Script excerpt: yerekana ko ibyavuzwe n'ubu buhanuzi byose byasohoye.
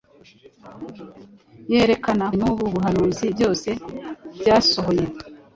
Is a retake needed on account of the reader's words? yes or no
yes